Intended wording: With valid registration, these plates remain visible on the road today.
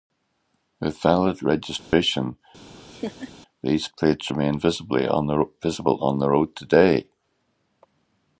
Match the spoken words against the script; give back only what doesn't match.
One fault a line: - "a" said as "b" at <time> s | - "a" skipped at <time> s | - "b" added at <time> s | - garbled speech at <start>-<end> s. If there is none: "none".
none